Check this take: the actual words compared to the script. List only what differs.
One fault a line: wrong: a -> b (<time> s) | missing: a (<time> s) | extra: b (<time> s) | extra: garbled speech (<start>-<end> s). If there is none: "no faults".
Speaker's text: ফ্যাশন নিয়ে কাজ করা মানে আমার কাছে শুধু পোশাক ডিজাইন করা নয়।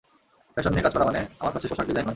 missing: শুধু (1.7 s)
missing: করা (2.1 s)